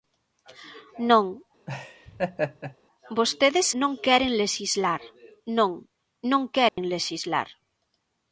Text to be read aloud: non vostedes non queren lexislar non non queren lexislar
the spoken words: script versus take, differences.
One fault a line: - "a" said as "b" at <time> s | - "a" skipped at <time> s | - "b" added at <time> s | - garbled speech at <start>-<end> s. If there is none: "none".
none